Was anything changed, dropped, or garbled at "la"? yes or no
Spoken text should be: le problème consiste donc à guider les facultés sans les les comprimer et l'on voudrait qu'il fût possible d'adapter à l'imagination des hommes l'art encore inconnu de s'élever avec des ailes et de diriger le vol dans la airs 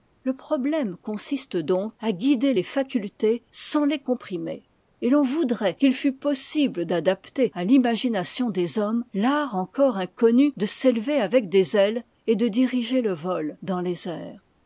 yes